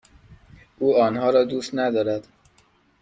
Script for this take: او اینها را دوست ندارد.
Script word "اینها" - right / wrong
wrong